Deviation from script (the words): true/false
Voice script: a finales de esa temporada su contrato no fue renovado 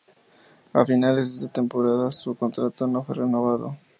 false